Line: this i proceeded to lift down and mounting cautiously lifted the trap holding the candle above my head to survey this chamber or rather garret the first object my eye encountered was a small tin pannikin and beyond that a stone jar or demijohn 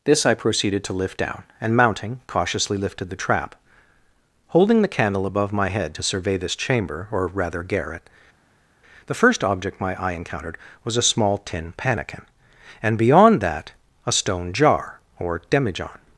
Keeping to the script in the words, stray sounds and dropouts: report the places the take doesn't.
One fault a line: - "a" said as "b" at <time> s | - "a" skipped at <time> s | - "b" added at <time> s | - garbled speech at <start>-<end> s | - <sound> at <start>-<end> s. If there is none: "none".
none